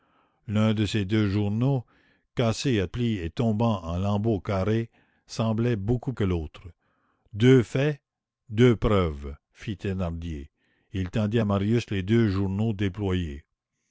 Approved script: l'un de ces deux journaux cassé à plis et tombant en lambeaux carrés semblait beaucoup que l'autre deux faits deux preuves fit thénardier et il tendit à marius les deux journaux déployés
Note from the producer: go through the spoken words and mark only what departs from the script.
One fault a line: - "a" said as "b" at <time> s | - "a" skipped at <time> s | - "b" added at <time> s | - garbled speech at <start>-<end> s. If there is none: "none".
none